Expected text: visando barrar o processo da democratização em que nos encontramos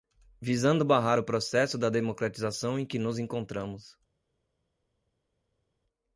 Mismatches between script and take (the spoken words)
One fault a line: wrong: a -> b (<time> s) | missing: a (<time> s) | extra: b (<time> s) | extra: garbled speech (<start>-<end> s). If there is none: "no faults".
no faults